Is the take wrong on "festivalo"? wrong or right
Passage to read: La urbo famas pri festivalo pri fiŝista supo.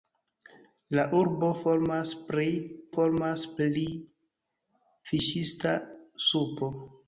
wrong